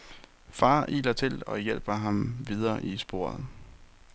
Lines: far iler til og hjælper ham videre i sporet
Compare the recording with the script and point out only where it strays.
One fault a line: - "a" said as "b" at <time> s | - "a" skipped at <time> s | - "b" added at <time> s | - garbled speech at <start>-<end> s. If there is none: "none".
none